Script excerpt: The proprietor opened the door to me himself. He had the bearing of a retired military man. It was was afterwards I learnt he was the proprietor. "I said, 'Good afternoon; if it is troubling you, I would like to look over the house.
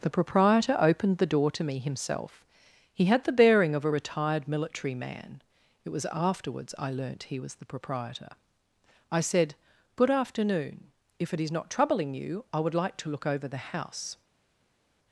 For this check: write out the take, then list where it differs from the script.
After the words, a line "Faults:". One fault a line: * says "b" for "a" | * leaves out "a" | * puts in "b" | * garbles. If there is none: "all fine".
The proprietor opened the door to me himself. He had the bearing of a retired military man. It was afterwards I learnt he was the proprietor. "I said, 'Good afternoon; if it is not troubling you, I would like to look over the house.
Faults:
* leaves out "was"
* puts in "not"